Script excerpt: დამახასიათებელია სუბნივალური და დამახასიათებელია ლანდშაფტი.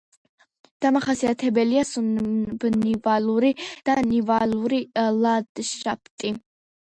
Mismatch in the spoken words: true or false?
true